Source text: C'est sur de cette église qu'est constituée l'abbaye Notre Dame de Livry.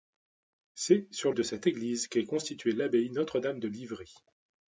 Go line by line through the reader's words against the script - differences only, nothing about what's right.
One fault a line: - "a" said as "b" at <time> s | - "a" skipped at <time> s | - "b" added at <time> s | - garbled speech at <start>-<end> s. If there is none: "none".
none